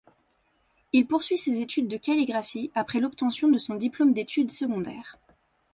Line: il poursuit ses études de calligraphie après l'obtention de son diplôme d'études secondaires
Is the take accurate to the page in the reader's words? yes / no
yes